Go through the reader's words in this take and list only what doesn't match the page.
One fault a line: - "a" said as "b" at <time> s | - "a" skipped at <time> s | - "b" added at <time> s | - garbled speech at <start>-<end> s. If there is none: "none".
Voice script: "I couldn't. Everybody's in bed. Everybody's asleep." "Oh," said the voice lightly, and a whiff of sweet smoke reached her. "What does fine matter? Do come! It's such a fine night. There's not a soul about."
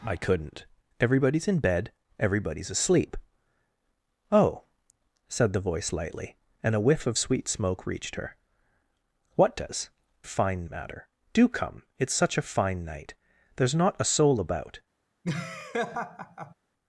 none